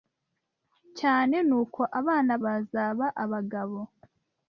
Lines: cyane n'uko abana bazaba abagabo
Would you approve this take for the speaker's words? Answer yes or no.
yes